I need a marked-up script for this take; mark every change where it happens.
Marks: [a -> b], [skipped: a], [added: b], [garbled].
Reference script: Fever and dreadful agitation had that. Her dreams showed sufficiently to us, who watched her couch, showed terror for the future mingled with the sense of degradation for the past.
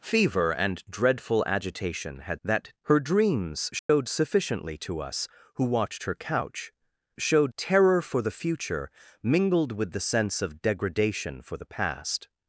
Fever and dreadful agitation had that. Her dreams showed sufficiently to us, who watched her couch, showed terror for the future mingled with the sense of degradation for the past.